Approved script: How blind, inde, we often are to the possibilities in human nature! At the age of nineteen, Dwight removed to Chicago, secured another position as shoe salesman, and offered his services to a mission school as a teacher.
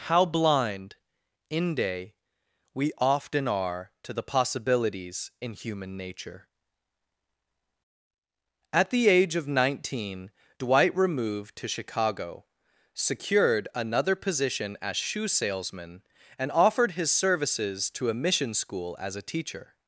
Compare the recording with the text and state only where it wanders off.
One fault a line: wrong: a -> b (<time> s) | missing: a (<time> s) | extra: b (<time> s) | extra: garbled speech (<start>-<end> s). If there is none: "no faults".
no faults